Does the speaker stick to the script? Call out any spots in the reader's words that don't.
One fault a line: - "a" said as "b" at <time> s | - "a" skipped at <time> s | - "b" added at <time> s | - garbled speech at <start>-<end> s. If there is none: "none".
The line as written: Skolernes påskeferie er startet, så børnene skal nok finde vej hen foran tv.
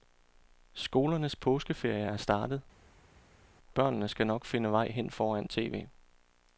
- "så" skipped at 2.6 s